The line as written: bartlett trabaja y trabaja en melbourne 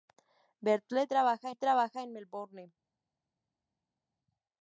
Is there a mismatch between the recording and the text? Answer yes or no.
no